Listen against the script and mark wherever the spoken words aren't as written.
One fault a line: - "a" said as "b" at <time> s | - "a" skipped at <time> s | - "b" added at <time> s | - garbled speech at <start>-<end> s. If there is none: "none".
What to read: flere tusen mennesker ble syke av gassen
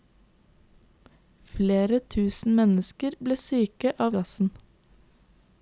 none